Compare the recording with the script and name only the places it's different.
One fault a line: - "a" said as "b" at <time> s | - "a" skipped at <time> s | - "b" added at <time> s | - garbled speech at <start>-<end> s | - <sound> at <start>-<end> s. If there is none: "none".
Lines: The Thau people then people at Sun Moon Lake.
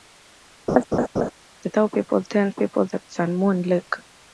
- laugh at 0.7-1.3 s